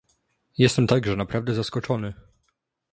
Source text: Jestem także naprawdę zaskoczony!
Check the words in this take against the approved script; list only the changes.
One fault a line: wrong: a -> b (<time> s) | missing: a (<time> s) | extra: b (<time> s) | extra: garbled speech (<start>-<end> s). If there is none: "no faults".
no faults